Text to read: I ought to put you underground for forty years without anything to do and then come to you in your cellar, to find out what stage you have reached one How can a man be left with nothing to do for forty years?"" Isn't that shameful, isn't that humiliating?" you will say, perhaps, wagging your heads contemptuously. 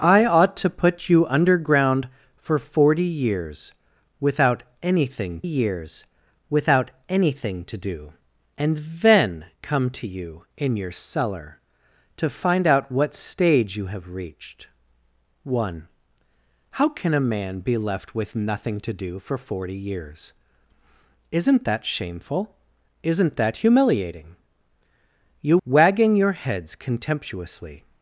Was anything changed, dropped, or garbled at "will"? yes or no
yes